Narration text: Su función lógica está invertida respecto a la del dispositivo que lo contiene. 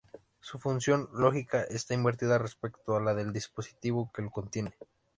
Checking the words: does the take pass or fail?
pass